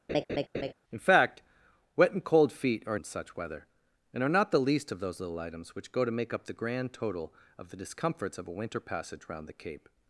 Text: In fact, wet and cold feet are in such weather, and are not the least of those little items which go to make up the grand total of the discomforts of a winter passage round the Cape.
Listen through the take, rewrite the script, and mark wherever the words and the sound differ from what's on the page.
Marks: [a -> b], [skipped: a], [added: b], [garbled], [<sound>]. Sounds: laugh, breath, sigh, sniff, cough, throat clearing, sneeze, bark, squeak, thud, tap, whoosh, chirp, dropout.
[laugh] In fact, wet and cold feet are in such weather, and are not the least of those little items which go to make up the grand total of the discomforts of a winter passage round the Cape.